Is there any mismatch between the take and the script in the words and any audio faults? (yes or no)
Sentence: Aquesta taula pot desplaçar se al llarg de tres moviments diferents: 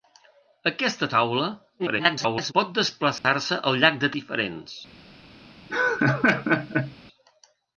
yes